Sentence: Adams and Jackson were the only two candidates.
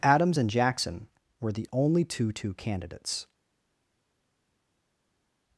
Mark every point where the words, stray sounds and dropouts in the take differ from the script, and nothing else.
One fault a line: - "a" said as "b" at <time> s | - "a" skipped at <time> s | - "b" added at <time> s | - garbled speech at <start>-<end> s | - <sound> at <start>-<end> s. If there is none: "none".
- "two" added at 2.3 s